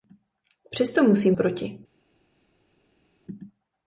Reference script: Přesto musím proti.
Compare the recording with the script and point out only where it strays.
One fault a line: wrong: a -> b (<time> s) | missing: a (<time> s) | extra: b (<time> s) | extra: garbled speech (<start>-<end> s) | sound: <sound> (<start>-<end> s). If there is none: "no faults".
no faults